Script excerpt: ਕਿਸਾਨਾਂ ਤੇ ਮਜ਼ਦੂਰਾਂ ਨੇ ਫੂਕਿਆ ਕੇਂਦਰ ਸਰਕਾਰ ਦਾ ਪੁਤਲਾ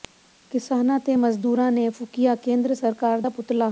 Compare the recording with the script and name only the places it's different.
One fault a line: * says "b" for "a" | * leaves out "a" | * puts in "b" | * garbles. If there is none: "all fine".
all fine